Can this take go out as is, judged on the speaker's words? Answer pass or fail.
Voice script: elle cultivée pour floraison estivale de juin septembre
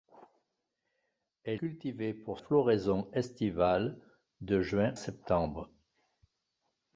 pass